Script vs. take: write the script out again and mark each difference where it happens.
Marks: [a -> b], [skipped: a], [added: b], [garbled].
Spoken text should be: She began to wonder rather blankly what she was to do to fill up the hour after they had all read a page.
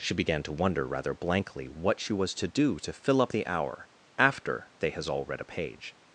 She began to wonder rather blankly what she was to do to fill up the hour after they [had -> has] all read a page.